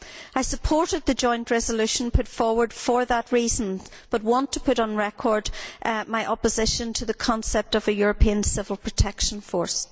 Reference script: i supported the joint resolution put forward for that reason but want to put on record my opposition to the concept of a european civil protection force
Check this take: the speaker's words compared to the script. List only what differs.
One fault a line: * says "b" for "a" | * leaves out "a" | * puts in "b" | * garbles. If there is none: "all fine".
all fine